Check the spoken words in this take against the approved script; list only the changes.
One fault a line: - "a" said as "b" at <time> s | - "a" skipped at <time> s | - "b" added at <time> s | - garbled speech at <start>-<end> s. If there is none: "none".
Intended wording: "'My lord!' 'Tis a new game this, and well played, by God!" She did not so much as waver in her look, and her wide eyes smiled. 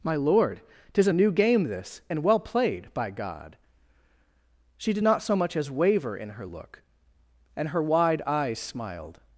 none